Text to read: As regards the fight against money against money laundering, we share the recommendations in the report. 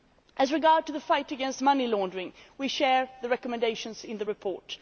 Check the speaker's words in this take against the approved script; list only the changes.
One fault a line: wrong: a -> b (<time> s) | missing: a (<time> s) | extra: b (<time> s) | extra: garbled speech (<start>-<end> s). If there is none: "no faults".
missing: against money (1.9 s)